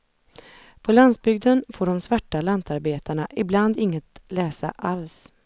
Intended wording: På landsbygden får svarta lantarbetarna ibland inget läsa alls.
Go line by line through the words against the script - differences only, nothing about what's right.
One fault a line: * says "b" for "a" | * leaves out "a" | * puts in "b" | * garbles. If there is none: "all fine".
* puts in "de"